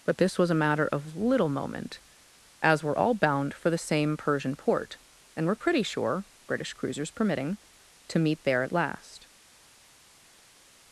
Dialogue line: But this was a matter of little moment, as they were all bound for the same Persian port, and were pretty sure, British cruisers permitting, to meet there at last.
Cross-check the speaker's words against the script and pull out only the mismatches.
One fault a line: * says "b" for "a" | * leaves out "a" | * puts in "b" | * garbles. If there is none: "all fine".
* leaves out "they"